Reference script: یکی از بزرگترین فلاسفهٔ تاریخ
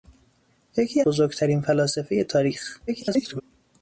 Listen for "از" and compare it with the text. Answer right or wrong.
wrong